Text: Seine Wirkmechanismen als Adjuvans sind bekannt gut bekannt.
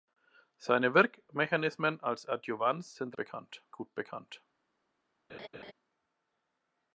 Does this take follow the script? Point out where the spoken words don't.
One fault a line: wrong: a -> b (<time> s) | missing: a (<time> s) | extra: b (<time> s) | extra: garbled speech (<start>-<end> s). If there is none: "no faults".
no faults